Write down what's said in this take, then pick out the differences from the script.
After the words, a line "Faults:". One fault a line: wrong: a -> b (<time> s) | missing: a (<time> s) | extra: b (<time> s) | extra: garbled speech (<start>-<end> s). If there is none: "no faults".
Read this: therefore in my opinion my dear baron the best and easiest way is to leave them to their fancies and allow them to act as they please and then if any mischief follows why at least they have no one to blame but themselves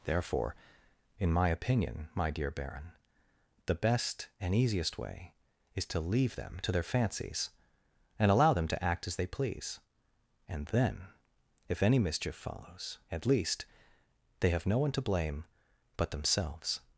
therefore in my opinion my dear baron the best and easiest way is to leave them to their fancies and allow them to act as they please and then if any mischief follows at least they have no one to blame but themselves
Faults:
missing: why (13.0 s)